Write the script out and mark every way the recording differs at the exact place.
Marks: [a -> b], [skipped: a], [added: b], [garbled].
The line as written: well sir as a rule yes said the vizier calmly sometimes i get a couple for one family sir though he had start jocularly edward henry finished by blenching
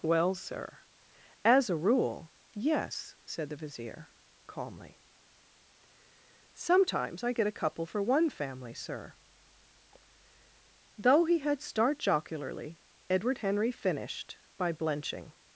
well sir as a rule yes said the vizier calmly sometimes i get a couple for one family sir though he had start jocularly edward henry finished by blenching